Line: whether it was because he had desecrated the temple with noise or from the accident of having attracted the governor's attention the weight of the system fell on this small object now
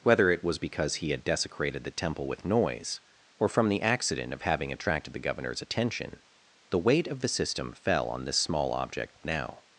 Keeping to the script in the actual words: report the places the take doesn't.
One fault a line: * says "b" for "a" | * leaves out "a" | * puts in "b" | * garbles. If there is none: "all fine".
all fine